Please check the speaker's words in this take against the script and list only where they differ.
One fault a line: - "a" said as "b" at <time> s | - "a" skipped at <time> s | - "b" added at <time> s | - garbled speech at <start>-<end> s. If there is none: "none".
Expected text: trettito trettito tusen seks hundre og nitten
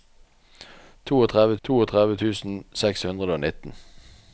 none